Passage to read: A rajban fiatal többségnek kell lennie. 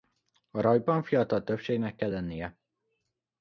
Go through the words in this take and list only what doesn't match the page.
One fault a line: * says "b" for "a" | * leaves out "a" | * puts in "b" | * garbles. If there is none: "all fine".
all fine